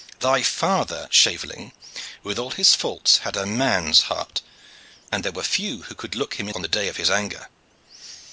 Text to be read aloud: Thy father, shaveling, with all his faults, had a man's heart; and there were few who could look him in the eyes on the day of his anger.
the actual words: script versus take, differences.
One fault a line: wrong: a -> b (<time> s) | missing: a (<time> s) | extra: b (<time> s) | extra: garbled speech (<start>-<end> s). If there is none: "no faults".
missing: the eyes (6.5 s)